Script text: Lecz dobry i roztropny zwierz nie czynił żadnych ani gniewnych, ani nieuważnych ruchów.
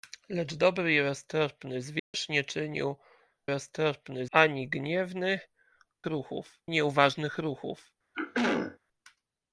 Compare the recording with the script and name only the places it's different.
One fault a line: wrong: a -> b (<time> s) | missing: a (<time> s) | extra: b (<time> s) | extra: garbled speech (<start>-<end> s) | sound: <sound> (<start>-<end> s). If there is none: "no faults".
sound: dropout (2.0-2.1 s)
wrong: żadnych -> roztropny (3.5 s)
wrong: ani -> ruchów (6.0 s)
sound: throat clearing (8.1-8.8 s)